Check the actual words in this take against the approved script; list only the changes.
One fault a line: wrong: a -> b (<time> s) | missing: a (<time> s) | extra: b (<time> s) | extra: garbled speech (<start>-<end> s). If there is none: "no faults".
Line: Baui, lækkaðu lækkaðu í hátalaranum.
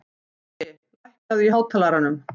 missing: lækkaðu (1.5 s)